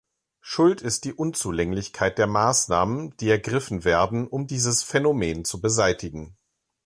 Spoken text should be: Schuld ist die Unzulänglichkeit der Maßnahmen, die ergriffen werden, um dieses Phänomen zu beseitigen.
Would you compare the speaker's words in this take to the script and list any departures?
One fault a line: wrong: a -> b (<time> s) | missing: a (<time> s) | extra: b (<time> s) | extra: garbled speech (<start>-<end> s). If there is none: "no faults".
no faults